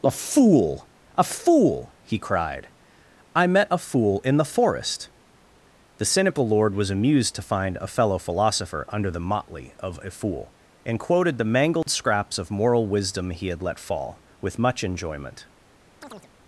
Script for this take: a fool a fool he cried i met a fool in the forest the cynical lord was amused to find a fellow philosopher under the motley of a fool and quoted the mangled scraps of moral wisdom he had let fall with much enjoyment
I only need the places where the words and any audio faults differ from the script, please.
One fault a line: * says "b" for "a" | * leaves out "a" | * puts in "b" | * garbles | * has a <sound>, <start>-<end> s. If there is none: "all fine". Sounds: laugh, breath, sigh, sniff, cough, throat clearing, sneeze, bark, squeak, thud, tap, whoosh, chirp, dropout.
* has a dropout, 11.8-11.9 s
* has a chirp, 16.0-16.3 s